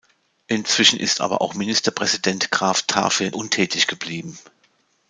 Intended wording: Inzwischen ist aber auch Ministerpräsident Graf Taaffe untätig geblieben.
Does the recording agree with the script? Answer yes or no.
yes